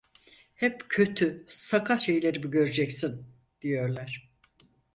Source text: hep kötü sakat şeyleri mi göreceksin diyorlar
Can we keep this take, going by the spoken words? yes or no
yes